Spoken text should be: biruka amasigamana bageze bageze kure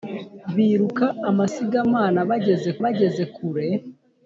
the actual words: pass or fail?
pass